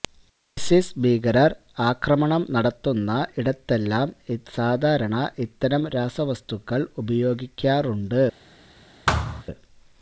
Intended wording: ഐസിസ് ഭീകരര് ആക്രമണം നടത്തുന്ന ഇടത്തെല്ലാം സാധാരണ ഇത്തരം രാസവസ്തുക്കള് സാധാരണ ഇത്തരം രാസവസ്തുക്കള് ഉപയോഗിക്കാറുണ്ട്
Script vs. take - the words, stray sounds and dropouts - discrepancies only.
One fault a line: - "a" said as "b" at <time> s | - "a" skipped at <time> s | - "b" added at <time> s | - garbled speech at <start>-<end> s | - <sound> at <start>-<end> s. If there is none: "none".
- "സാധാരണ ഇത്തരം രാസവസ്തുക്കള്" skipped at 6.9 s
- thud at 9.1-9.4 s